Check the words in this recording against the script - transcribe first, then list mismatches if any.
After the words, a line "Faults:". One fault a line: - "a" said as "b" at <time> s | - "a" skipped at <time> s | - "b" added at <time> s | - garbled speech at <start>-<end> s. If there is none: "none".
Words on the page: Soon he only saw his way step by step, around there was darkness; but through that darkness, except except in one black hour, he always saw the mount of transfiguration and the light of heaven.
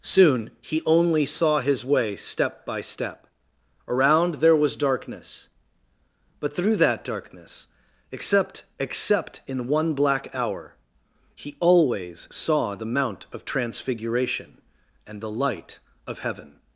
Soon he only saw his way step by step, around there was darkness; but through that darkness, except except in one black hour, he always saw the mount of transfiguration and the light of heaven.
Faults:
none